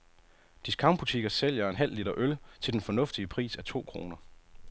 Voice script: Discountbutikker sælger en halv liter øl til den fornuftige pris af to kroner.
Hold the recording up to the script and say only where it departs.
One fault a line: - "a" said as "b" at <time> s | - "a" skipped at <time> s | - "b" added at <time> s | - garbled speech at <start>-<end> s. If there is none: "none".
none